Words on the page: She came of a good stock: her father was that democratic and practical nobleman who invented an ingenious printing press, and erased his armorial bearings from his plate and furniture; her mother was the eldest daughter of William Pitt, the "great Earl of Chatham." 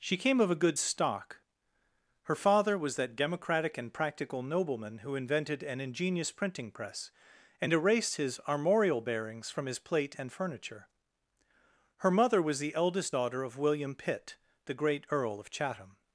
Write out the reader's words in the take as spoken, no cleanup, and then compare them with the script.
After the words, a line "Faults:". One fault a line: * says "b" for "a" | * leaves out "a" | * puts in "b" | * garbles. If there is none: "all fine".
She came of a good stock: her father was that democratic and practical nobleman who invented an ingenious printing press, and erased his armorial bearings from his plate and furniture; her mother was the eldest daughter of William Pitt, the "great Earl of Chatham."
Faults:
all fine